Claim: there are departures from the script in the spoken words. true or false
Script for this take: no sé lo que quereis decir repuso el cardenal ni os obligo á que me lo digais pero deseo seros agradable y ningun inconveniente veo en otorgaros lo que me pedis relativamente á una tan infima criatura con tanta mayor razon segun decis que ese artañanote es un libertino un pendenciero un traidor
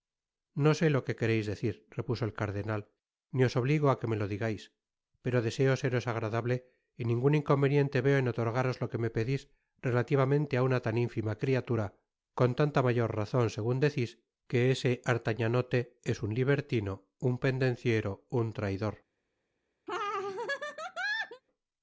false